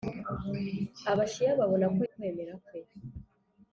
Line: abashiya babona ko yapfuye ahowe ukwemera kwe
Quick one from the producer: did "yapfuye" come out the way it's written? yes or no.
no